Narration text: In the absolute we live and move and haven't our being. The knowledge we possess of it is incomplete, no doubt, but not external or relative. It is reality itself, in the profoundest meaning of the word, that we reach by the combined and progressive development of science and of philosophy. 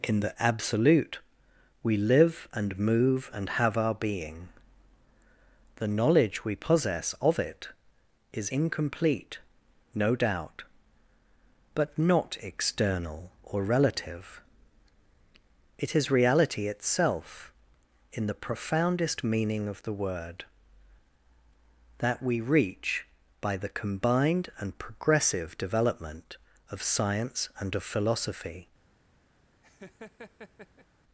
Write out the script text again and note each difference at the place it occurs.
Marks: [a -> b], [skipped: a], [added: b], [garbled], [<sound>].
In the absolute we live and move and [haven't -> have] our being. The knowledge we possess of it is incomplete, no doubt, but not external or relative. It is reality itself, in the profoundest meaning of the word, that we reach by the combined and progressive development of science and of philosophy. [laugh]